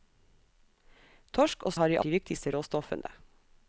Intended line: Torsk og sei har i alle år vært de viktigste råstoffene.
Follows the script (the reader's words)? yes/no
no